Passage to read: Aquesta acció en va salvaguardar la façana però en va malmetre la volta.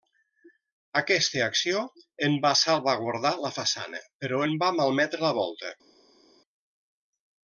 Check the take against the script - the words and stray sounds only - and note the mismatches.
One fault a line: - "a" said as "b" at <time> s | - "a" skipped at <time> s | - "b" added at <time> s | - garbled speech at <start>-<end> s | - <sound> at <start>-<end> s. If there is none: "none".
none